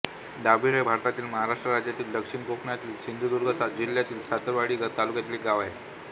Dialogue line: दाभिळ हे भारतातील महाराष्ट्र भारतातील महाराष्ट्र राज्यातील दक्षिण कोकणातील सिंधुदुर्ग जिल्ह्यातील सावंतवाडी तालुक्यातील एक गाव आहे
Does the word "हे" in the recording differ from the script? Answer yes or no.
no